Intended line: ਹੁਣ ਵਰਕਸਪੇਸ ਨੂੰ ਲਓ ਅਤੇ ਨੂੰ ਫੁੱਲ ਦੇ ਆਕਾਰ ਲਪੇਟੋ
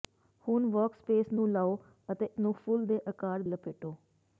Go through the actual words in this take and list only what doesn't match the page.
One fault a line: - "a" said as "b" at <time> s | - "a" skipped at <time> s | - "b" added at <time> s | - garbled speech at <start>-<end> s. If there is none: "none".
none